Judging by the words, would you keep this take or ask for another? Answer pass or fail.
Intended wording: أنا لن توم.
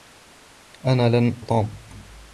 pass